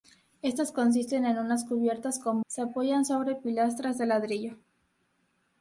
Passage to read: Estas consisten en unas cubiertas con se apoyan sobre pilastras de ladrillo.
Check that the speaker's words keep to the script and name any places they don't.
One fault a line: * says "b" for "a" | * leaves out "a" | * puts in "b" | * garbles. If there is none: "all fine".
all fine